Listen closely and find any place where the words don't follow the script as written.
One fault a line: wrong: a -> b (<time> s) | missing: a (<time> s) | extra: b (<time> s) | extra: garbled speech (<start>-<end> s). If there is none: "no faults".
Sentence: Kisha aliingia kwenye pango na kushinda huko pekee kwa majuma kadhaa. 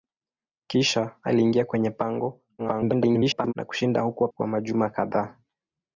extra: garbled speech (2.6-3.5 s)
missing: pekee (4.3 s)